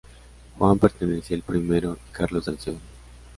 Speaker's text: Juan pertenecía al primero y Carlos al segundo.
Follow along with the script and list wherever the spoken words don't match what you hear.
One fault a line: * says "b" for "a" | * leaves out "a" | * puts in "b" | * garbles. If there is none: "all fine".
all fine